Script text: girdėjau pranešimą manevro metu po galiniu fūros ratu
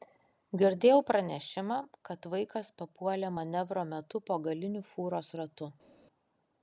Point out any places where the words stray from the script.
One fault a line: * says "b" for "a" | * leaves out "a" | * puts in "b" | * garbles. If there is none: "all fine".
* puts in "kad vaikas papuolė"